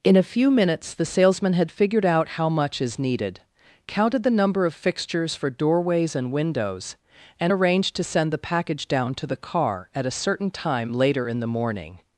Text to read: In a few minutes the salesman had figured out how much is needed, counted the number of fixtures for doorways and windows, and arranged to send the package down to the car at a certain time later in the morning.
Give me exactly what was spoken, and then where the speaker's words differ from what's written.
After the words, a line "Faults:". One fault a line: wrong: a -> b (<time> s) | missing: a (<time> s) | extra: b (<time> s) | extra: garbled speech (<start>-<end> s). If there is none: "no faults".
In a few minutes the salesman had figured out how much is needed, counted the number of fixtures for doorways and windows, and arranged to send the package down to the car at a certain time later in the morning.
Faults:
no faults